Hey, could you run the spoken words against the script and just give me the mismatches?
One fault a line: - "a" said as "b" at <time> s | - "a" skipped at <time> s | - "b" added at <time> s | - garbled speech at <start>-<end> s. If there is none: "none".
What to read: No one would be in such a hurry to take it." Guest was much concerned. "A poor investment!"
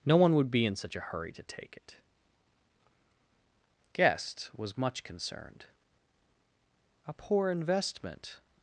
none